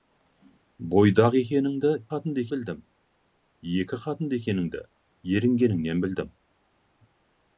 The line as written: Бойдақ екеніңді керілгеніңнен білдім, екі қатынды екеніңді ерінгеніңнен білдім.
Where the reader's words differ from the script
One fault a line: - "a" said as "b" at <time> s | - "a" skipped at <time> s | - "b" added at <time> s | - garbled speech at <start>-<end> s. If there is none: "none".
- "керілгеніңнен" said as "қатынды" at 2.1 s